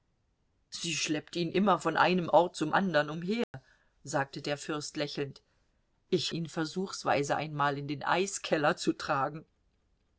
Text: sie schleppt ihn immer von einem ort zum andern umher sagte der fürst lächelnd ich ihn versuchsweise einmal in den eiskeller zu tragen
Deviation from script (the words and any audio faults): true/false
true